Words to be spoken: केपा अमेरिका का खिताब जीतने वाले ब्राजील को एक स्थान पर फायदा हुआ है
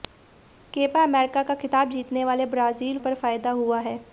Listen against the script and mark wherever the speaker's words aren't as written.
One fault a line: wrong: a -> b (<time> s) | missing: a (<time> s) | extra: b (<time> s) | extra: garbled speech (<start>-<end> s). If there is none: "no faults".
missing: को एक स्थान (3.0 s)